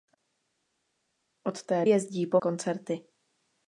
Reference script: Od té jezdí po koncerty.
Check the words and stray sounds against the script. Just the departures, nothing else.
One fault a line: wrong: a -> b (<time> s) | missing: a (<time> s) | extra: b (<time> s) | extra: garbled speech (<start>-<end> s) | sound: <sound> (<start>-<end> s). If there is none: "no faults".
no faults